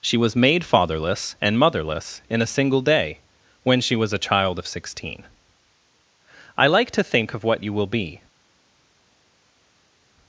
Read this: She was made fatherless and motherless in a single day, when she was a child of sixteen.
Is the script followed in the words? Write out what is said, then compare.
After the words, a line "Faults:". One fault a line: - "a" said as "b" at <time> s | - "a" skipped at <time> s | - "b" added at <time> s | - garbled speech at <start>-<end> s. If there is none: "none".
She was made fatherless and motherless in a single day, when she was a child of sixteen. I like to think of what you will be
Faults:
- "I like to think of what you will be" added at 6.6 s